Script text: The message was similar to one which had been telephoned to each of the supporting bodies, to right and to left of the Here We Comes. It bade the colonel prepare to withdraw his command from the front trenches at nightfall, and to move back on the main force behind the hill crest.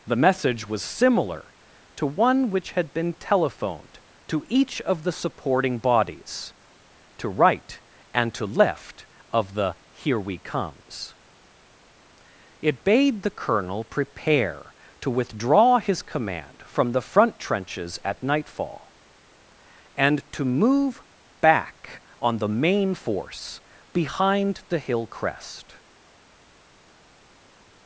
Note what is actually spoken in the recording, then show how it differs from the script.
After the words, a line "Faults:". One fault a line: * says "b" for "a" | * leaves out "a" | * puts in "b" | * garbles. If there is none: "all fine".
The message was similar to one which had been telephoned to each of the supporting bodies, to right and to left of the Here We Comes. It bade the colonel prepare to withdraw his command from the front trenches at nightfall, and to move back on the main force behind the hill crest.
Faults:
all fine